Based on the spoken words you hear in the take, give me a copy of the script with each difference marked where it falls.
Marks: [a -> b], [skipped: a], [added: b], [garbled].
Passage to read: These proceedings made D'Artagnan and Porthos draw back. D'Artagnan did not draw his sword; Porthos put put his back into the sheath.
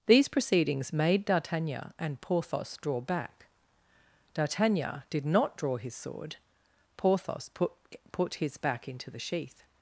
These proceedings made D'Artagnan and Porthos draw back. D'Artagnan did not draw his sword; Porthos put put his back into the sheath.